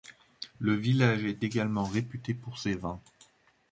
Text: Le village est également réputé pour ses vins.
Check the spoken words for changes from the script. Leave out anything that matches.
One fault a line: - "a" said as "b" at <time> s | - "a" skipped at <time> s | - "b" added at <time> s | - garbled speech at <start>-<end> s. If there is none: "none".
none